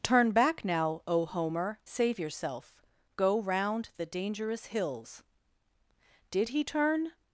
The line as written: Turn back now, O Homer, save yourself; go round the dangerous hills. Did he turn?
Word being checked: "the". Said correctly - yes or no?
yes